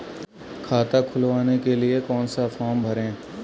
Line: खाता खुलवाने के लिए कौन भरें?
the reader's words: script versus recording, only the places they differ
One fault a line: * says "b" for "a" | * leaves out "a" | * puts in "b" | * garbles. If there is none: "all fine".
* puts in "सा फॉर्म"